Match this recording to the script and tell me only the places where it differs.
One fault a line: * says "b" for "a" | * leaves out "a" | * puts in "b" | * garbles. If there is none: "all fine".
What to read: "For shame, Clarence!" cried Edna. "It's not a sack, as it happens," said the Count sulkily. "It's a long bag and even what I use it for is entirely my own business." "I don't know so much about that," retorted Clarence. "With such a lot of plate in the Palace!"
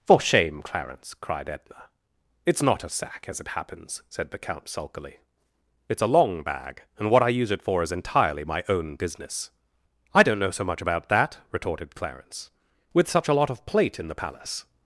* leaves out "even"